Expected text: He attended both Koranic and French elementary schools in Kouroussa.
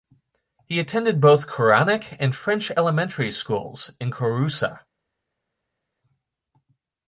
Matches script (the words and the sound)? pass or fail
pass